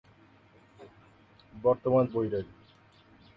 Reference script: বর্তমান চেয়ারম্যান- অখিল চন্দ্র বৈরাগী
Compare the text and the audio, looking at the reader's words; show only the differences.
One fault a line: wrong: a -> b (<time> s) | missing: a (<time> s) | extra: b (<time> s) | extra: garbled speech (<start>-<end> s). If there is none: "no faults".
missing: চেয়ারম্যান অখিল চন্দ্র (2.0 s)